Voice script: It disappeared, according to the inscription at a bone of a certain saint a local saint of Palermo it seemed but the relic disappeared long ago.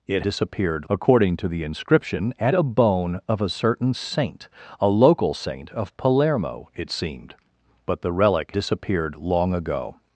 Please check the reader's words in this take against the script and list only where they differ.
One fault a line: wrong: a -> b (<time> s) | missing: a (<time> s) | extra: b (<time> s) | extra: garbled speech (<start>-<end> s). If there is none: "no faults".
no faults